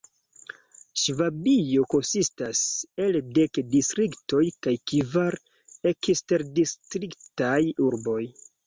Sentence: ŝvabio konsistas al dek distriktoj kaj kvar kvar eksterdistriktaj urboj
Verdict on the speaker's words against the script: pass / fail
fail